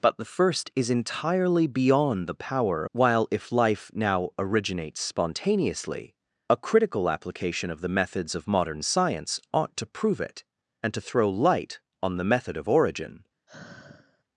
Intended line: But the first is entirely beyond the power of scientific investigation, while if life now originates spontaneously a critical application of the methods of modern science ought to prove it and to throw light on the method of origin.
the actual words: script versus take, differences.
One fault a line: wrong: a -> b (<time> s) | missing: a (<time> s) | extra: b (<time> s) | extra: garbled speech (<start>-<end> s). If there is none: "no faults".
missing: of scientific investigation (2.9 s)